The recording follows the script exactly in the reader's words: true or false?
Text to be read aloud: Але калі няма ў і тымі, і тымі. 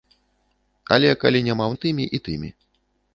true